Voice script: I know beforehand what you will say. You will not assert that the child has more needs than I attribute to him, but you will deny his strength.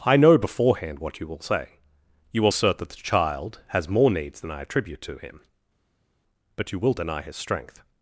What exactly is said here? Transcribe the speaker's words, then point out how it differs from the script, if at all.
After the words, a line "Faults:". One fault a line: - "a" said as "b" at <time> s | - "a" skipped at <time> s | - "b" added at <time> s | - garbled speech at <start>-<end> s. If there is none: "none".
I know beforehand what you will say. You will assert that the child has more needs than I attribute to him, but you will deny his strength.
Faults:
- "not" skipped at 2.5 s